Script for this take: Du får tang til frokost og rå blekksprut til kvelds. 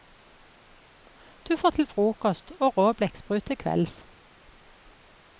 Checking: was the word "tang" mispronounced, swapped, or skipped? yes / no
yes